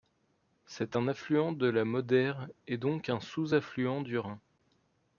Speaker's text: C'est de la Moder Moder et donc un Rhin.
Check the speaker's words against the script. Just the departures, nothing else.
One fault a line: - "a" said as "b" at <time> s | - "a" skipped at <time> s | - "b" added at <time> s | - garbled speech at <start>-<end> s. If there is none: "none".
- "un affluent" added at 0.9 s
- "Moder" skipped at 2.3 s
- "sous affluent du" added at 3.2 s